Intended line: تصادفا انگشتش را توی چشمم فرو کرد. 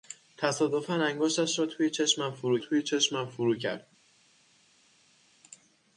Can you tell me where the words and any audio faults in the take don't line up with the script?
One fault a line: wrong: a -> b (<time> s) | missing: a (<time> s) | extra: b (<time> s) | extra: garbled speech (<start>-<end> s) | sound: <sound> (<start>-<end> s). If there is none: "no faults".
extra: توی چشمم فرو (2.6 s)